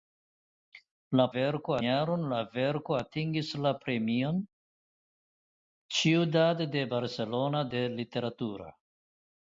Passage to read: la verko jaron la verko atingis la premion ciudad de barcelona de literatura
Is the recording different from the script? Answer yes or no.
no